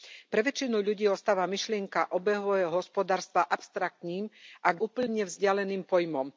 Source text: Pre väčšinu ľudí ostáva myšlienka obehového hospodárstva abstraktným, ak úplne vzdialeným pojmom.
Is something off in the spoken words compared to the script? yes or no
no